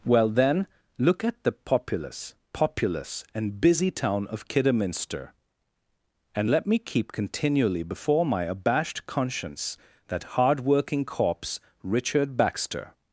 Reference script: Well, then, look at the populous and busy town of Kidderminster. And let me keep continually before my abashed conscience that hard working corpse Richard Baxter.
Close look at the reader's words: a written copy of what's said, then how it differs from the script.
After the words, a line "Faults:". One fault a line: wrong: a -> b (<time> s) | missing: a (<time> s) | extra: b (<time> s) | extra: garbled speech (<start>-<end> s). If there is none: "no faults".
Well, then, look at the populous populous and busy town of Kidderminster. And let me keep continually before my abashed conscience that hard working corpse Richard Baxter.
Faults:
extra: populous (2.5 s)